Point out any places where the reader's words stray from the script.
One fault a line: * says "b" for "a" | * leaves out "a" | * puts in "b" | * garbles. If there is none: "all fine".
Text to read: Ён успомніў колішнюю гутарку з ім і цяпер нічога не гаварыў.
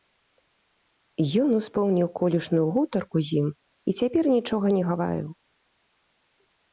all fine